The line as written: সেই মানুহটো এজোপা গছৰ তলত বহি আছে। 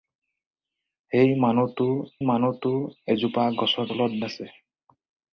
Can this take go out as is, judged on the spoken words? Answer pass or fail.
fail